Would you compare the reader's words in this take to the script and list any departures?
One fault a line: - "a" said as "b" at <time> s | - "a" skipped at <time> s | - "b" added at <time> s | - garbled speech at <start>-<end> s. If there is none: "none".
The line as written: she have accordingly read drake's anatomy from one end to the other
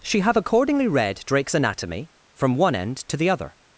none